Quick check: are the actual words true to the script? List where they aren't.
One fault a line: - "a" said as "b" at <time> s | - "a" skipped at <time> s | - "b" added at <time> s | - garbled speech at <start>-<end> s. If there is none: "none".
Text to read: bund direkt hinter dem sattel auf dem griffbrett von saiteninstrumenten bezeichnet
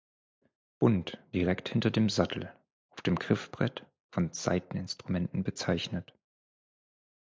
none